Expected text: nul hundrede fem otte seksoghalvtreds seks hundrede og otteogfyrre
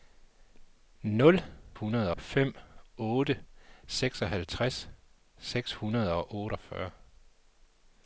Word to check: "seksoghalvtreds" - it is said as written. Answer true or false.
true